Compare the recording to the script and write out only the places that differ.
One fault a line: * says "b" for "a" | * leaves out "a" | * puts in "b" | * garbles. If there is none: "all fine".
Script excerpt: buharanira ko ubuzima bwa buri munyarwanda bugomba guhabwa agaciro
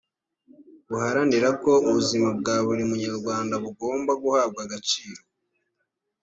all fine